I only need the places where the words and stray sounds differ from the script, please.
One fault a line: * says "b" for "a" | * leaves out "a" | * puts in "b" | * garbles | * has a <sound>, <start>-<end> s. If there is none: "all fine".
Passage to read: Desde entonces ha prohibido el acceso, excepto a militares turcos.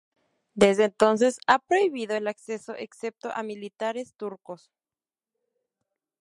all fine